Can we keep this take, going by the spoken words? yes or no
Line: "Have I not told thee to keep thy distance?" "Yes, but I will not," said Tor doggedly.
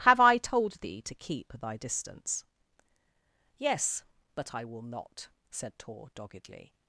no